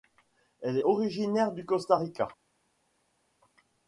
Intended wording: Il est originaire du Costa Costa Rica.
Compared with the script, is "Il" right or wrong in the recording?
wrong